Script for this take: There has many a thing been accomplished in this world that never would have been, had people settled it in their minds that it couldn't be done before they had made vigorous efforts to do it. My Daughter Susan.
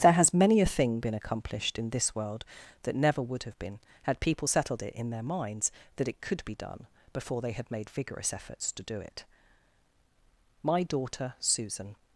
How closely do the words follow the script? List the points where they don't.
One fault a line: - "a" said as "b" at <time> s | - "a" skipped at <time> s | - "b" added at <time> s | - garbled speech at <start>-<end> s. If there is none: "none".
- "couldn't" said as "could" at 6.2 s